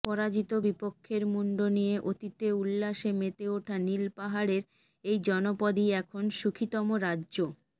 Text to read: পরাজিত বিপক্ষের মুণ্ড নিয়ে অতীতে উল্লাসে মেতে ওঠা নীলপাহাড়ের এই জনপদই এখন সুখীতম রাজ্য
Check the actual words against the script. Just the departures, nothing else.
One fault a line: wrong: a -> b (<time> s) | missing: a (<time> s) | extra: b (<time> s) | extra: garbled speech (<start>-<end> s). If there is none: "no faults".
no faults